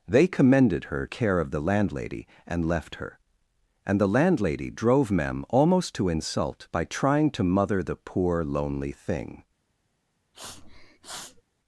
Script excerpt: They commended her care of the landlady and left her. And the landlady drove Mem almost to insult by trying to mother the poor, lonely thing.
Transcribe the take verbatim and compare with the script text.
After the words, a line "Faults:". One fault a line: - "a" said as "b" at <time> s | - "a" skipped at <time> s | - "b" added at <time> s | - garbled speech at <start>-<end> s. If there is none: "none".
They commended her care of the landlady and left her. And the landlady drove Mem almost to insult by trying to mother the poor, lonely thing.
Faults:
none